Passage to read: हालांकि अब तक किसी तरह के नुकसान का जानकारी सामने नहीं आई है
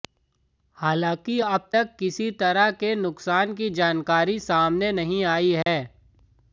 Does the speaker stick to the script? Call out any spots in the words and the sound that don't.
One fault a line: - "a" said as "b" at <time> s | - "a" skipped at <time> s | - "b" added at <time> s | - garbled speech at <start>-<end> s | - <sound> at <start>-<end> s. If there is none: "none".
- "का" said as "की" at 3.5 s
- dropout at 5.6-5.7 s